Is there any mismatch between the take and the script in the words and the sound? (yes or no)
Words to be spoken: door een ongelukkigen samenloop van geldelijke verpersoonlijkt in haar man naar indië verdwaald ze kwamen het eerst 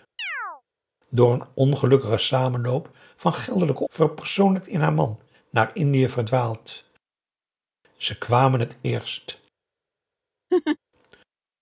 yes